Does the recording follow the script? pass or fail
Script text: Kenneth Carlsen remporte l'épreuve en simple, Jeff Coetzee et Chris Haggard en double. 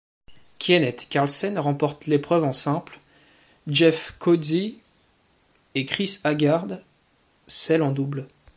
fail